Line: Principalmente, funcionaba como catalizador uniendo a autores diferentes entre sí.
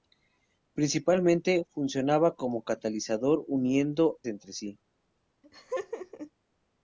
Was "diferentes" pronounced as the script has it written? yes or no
no